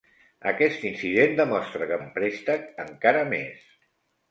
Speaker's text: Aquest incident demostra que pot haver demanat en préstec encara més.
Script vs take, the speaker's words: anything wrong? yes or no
yes